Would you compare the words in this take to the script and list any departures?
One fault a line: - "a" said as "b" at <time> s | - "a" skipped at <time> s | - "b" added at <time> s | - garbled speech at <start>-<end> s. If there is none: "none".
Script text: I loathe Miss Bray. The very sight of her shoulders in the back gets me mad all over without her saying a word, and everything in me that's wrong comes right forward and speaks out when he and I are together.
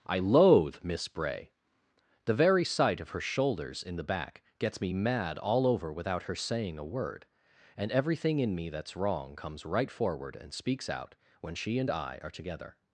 - "he" said as "she" at 11.5 s